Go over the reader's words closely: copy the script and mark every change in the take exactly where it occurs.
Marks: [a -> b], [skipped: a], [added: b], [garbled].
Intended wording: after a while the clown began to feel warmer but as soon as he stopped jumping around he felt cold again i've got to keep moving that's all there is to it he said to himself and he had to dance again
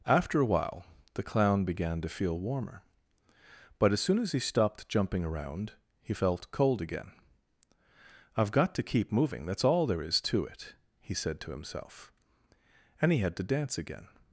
after a while the clown began to feel warmer but as soon as he stopped jumping around he felt cold again i've got to keep moving that's all there is to it he said to himself and he had to dance again